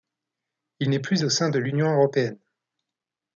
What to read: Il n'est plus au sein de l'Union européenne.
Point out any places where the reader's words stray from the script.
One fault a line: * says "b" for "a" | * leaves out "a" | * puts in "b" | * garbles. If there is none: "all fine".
all fine